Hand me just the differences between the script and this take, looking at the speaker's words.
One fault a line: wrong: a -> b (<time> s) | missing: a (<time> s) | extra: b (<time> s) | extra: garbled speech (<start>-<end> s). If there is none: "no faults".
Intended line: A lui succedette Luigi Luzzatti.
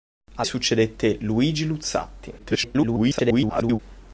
missing: lui (0.4 s)
extra: garbled speech (2.4-3.8 s)